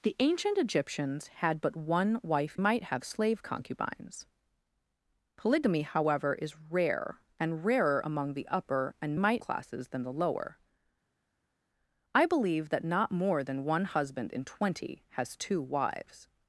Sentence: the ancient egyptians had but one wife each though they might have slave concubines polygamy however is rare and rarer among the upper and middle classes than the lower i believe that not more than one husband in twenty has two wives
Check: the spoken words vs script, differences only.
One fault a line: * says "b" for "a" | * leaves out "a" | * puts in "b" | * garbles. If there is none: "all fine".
* leaves out "each though they"
* says "might" for "middle"